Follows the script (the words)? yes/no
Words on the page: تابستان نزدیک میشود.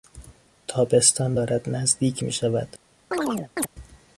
no